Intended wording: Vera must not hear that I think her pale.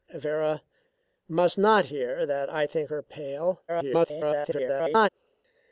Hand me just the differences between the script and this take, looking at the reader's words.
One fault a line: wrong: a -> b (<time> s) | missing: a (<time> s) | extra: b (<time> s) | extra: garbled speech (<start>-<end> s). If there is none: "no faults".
extra: garbled speech (3.7-5.1 s)